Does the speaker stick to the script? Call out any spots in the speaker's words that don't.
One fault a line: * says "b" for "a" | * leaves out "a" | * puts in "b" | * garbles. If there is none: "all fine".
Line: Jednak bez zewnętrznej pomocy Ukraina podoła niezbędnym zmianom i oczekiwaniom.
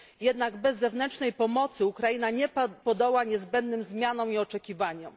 all fine